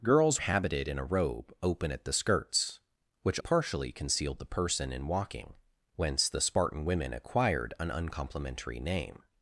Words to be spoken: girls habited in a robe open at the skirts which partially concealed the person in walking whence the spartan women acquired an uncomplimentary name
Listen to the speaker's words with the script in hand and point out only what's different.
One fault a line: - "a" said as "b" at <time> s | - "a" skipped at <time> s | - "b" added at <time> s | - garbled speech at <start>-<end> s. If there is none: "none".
none